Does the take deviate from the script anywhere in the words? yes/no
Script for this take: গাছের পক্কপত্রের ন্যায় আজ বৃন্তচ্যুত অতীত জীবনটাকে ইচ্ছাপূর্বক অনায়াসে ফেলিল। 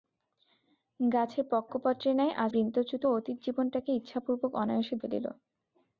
no